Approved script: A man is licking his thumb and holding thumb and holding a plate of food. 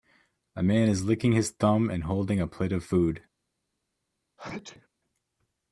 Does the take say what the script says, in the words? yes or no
no